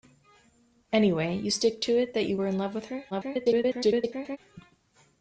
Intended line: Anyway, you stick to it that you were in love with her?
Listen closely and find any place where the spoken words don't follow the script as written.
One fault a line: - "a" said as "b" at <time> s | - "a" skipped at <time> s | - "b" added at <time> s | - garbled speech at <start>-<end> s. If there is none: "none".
- garbled speech at 3.1-4.4 s